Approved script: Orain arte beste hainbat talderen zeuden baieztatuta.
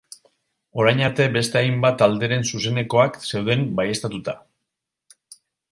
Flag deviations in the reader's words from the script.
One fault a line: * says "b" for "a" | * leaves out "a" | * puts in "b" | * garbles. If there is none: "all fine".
* puts in "zuzenekoak"